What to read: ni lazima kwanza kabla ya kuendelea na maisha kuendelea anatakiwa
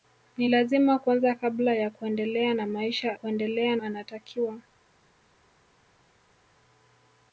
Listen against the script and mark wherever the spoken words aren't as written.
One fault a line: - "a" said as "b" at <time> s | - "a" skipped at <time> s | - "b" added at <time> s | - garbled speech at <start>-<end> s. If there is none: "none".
none